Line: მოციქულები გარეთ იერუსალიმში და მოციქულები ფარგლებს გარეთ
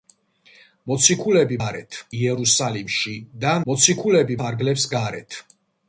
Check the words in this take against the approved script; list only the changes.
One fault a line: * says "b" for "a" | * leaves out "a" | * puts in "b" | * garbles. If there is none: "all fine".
all fine